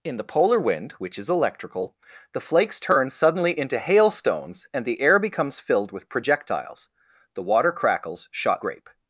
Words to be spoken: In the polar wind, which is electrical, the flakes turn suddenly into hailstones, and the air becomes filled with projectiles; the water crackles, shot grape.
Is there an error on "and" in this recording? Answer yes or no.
no